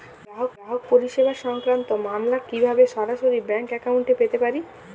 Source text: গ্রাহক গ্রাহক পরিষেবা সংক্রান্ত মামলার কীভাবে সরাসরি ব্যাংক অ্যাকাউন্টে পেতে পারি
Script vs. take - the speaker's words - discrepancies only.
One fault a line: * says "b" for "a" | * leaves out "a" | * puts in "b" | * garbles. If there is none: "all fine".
all fine